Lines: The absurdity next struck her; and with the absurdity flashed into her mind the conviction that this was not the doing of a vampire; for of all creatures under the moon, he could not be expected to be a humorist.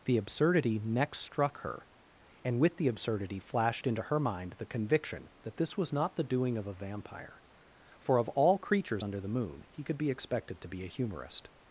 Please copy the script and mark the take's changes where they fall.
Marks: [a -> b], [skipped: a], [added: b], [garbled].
The absurdity next struck her; and with the absurdity flashed into her mind the conviction that this was not the doing of a vampire; for of all creatures under the moon, he could [skipped: not] be expected to be a humorist.